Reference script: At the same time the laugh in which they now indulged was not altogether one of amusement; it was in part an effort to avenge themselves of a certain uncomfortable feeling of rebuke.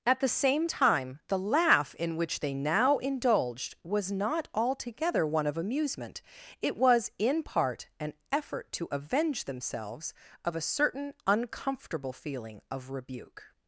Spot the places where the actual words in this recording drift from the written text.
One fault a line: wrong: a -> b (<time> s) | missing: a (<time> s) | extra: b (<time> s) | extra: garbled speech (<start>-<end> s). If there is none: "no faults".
no faults